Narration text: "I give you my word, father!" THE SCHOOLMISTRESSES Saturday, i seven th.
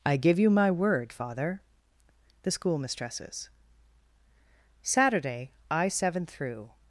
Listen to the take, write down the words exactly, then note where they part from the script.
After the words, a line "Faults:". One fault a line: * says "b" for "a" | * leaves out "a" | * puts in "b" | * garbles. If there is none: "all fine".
"I give you my word, father!" THE SCHOOLMISTRESSES Saturday, i seven through.
Faults:
* says "through" for "th"